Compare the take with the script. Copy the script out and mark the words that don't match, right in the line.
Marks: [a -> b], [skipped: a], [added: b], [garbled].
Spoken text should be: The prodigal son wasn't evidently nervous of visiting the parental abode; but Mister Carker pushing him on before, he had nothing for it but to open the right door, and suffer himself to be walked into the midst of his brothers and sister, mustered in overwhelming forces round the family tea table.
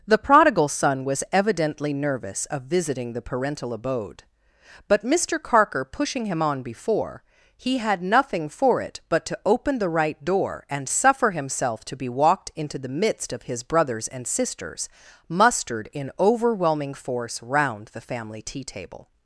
The prodigal son [wasn't -> was] evidently nervous of visiting the parental abode; but Mister Carker pushing him on before, he had nothing for it but to open the right door, and suffer himself to be walked into the midst of his brothers and [sister, -> sisters] mustered in overwhelming [forces -> force] round the family tea table.